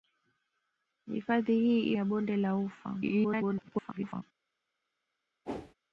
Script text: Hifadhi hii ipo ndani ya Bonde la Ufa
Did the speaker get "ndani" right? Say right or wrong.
wrong